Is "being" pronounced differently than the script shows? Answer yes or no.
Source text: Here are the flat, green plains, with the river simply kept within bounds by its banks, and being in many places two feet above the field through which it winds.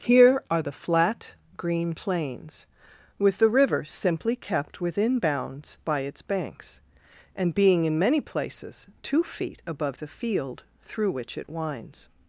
no